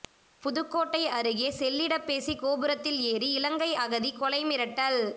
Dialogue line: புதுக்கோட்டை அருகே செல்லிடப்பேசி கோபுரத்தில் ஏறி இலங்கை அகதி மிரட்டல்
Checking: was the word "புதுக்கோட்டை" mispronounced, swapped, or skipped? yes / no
no